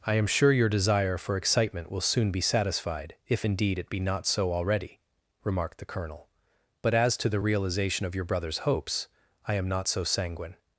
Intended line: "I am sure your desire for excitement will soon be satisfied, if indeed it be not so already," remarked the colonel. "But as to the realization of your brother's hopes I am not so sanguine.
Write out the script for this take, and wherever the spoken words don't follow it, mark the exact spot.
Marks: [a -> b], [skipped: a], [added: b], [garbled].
"I am sure your desire for excitement will soon be satisfied, if indeed it be not so already," remarked the colonel. "But as to the realization of your brother's hopes I am not so sanguine.